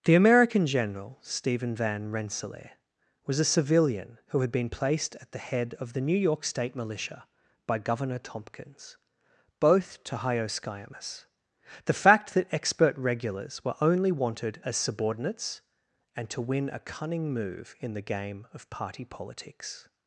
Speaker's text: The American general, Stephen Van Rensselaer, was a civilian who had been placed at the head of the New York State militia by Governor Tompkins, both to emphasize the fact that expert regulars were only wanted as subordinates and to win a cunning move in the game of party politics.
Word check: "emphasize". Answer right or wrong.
wrong